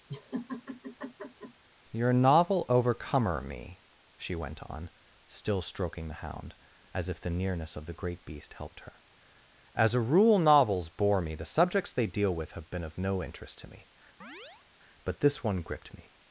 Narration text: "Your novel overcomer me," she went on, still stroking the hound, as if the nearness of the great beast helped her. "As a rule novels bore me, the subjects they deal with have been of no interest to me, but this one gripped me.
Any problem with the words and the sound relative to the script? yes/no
yes